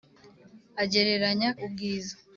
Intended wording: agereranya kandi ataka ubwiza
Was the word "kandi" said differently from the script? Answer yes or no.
yes